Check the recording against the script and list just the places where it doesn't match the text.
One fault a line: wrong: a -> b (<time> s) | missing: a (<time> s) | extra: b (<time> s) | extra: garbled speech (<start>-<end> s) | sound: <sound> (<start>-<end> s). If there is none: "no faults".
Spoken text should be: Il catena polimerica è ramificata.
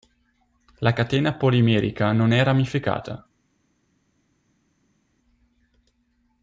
wrong: Il -> La (0.8 s)
extra: non (2.1 s)